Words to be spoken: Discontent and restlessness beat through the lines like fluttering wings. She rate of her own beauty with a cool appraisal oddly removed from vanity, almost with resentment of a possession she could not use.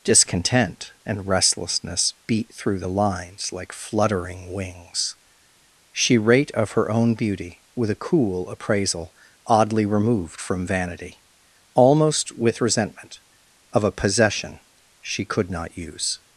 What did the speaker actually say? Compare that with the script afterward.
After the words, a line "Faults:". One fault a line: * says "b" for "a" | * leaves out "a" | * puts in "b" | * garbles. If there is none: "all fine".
Discontent and restlessness beat through the lines like fluttering wings. She rate of her own beauty with a cool appraisal oddly removed from vanity, almost with resentment of a possession she could not use.
Faults:
all fine